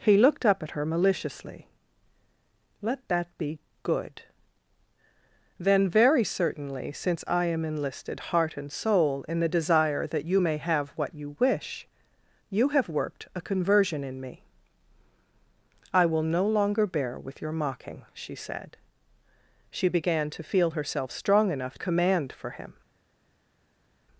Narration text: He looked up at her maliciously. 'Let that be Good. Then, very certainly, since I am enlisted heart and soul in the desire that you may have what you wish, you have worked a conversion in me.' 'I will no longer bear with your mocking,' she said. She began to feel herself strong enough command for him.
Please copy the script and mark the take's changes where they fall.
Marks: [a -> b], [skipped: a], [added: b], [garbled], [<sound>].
He looked up at her maliciously. 'Let that be Good. Then, very certainly, since I am enlisted heart and soul in the desire that you may have what you wish, you have worked a conversion in me.' 'I will no longer bear with your mocking,' she said. She began to feel herself strong enough command for him.